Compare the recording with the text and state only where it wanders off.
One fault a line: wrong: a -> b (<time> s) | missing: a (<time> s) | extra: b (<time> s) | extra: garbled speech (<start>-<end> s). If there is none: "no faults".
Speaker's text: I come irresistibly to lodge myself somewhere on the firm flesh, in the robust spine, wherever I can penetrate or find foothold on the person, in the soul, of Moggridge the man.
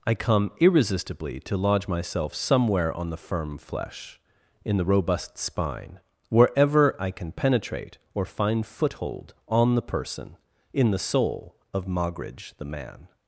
no faults